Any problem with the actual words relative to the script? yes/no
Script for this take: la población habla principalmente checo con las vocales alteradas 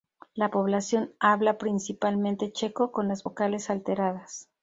no